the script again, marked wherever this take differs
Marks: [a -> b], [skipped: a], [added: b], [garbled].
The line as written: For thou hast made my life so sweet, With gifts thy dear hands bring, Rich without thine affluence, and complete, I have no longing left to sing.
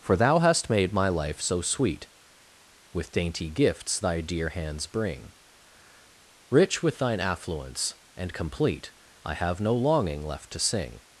For thou hast made my life so sweet, With [added: dainty] gifts thy dear hands bring, Rich [without -> with] thine affluence, and complete, I have no longing left to sing.